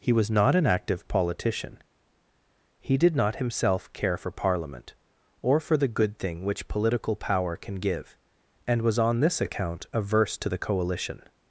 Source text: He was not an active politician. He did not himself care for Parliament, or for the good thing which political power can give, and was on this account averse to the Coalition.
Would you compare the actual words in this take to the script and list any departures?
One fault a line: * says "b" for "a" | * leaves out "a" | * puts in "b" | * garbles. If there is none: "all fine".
all fine